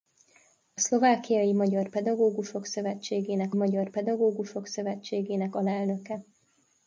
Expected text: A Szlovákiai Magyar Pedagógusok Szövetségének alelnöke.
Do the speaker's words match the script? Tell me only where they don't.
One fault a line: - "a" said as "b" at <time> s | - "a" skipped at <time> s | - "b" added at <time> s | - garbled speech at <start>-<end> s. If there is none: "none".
- "Magyar Pedagógusok Szövetségének" added at 3.5 s